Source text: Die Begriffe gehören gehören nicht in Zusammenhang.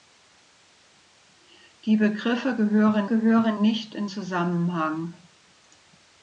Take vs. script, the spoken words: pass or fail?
pass